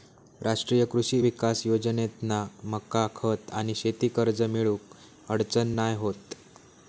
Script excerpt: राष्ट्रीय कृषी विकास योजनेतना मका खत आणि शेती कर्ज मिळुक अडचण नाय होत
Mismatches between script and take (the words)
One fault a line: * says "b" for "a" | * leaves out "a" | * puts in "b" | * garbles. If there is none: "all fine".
all fine